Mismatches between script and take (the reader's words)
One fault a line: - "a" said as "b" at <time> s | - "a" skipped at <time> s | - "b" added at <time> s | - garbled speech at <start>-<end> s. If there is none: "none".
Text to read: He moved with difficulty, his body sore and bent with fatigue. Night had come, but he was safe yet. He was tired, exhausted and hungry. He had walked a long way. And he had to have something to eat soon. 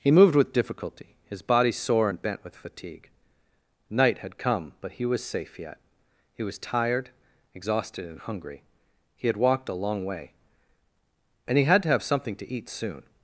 none